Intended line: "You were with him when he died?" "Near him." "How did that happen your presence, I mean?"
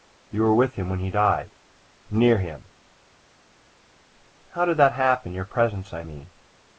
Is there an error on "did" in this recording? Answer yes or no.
no